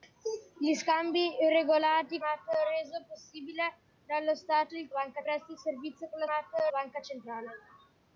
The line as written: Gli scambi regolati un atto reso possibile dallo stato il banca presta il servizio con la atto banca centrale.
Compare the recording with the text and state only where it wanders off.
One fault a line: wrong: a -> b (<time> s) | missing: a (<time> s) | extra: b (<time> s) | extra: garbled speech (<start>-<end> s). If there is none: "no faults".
no faults